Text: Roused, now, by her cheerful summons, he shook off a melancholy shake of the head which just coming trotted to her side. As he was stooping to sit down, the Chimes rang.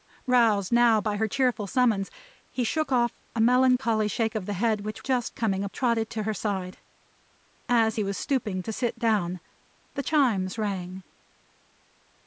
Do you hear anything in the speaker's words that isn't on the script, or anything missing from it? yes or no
no